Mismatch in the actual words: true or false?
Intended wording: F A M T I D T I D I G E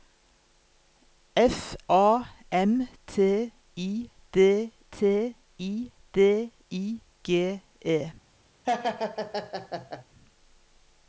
false